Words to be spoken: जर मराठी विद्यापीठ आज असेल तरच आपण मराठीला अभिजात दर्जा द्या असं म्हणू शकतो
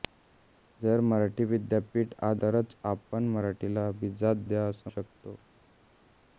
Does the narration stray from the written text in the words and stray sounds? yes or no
yes